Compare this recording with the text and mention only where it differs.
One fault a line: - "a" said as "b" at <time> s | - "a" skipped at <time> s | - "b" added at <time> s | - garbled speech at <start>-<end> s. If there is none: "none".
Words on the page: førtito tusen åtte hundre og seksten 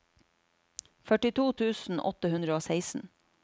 none